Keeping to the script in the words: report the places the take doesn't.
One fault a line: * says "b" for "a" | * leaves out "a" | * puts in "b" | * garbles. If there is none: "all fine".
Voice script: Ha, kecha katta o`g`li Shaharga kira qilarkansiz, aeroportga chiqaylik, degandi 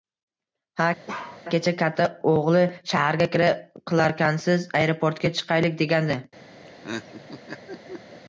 all fine